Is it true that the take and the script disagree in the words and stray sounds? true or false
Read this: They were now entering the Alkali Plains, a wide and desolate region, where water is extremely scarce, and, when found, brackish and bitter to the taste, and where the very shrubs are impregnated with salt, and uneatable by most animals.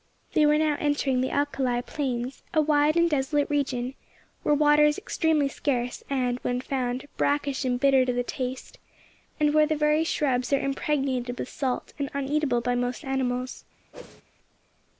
true